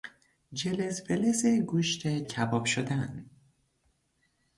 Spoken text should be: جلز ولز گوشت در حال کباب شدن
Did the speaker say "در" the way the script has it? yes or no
no